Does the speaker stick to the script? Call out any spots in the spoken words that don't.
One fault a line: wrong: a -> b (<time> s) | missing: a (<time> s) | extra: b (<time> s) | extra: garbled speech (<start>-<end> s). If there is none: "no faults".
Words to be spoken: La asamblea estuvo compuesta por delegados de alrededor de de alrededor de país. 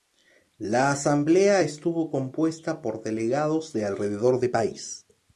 missing: de alrededor de (4.5 s)